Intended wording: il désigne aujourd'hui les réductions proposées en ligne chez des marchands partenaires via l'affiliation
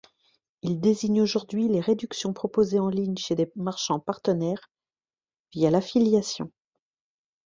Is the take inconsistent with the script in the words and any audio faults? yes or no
no